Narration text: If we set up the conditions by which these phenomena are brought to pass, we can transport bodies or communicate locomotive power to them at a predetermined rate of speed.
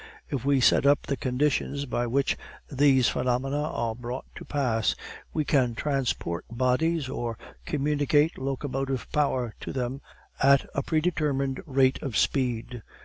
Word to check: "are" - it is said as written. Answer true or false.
true